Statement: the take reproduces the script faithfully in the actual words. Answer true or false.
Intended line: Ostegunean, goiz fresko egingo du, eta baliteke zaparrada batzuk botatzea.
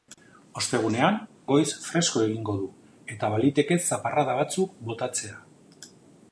true